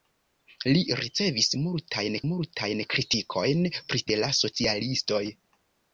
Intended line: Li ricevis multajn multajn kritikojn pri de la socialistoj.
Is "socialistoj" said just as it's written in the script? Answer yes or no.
yes